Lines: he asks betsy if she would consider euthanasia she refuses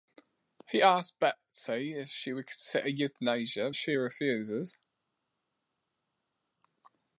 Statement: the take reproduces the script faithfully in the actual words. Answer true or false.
true